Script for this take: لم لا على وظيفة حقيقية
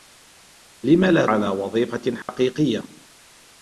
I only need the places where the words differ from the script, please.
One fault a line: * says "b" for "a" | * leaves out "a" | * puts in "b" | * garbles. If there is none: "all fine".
all fine